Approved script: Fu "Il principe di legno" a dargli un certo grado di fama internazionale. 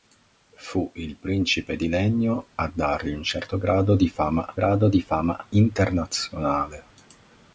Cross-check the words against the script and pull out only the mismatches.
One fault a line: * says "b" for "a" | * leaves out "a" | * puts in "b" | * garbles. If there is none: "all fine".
* puts in "grado di fama"